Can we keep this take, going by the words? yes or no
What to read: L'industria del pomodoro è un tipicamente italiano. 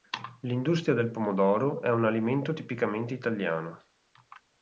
no